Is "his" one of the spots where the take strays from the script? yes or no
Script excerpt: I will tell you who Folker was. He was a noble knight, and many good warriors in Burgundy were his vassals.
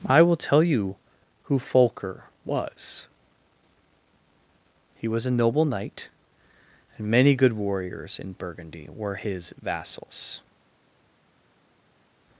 no